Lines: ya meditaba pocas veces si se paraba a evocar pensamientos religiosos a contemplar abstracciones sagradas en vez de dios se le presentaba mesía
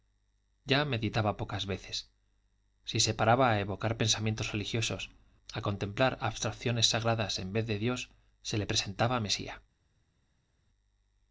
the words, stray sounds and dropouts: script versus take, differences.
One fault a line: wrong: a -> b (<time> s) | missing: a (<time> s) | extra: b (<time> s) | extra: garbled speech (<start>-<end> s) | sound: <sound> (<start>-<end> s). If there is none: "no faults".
no faults